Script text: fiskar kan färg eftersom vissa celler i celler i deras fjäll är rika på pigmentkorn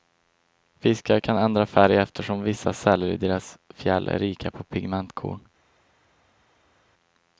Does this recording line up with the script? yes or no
no